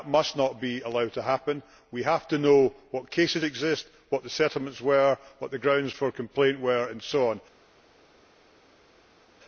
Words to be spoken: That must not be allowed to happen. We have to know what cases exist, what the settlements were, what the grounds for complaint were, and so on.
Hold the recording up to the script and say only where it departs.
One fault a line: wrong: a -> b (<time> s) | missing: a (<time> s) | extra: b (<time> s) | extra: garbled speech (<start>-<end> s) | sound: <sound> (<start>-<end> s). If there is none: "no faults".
no faults